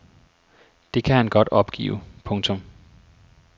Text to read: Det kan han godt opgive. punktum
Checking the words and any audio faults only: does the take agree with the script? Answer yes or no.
yes